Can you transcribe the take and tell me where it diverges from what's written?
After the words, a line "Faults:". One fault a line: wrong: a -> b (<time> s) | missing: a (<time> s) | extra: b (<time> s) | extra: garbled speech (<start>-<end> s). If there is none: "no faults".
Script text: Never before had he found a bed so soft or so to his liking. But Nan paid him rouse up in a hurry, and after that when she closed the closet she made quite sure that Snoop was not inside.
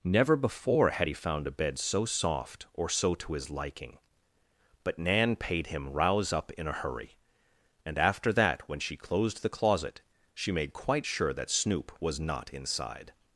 Never before had he found a bed so soft or so to his liking. But Nan paid him rouse up in a hurry, and after that when she closed the closet she made quite sure that Snoop was not inside.
Faults:
no faults